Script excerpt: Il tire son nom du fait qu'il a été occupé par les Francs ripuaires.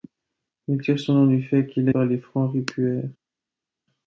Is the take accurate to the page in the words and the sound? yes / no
no